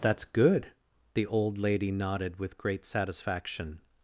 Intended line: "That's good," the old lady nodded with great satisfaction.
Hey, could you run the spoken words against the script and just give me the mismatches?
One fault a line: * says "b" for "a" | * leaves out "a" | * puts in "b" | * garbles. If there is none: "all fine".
all fine